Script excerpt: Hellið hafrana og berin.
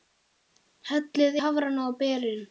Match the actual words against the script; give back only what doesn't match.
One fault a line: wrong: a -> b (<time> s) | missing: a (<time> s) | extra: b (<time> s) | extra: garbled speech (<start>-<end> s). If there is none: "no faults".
no faults